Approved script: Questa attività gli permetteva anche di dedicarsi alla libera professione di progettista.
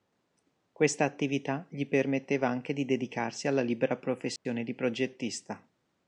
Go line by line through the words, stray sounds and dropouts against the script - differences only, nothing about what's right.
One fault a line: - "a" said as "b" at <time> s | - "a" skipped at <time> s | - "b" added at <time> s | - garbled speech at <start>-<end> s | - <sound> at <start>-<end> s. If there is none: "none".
- dropout at 4.4-4.5 s